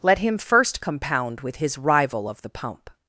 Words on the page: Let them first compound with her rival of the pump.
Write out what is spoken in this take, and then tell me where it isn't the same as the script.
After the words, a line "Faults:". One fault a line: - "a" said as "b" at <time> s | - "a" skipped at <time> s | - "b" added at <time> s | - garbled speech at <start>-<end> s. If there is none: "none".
Let him first compound with his rival of the pump.
Faults:
- "them" said as "him" at 0.2 s
- "her" said as "his" at 1.6 s